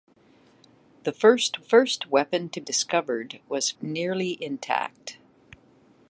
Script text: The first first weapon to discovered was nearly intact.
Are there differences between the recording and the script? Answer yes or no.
no